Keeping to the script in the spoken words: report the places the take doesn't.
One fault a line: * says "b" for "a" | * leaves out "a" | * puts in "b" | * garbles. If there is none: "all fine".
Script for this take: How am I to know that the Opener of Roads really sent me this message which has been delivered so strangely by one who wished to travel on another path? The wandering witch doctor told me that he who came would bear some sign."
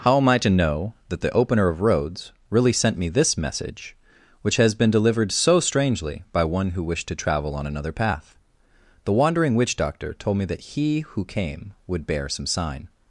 all fine